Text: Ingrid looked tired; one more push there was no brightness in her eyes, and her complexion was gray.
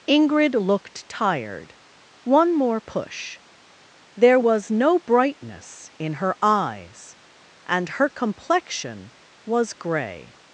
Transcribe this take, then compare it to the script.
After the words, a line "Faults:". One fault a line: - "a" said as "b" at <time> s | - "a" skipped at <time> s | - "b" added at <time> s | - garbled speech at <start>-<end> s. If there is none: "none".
Ingrid looked tired; one more push there was no brightness in her eyes, and her complexion was gray.
Faults:
none